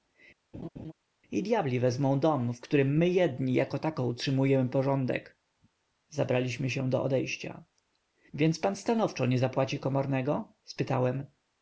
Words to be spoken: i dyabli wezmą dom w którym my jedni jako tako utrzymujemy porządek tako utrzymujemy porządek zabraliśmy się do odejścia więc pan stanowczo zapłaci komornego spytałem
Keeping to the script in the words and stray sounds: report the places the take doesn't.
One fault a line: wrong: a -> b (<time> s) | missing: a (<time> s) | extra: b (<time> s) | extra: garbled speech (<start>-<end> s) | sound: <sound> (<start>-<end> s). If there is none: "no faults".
sound: laugh (0.5-0.9 s)
missing: tako utrzymujemy porządek (5.4 s)
extra: nie (9.3 s)